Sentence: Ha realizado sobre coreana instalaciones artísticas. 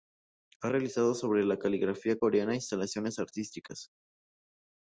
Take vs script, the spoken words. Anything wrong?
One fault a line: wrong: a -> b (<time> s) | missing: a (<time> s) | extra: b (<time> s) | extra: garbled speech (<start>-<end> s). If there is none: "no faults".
extra: la caligrafía (1.4 s)